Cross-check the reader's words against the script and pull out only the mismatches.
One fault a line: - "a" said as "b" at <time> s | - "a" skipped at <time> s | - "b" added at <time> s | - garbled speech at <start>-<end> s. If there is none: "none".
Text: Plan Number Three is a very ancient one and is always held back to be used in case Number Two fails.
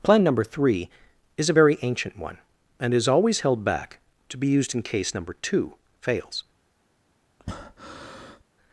none